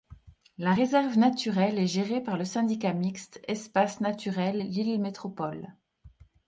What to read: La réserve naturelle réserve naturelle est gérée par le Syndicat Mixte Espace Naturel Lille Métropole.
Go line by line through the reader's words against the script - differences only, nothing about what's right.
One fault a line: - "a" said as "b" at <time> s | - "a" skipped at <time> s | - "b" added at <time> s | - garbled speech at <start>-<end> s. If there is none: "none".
- "réserve naturelle" skipped at 1.8 s